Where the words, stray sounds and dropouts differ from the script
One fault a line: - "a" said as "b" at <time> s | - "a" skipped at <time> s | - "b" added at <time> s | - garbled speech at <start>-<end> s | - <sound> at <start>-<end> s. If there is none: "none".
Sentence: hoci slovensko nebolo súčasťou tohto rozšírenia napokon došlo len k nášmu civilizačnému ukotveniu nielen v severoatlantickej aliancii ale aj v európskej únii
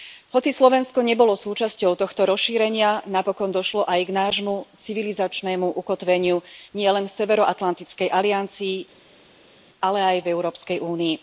- "len" said as "aj" at 3.8 s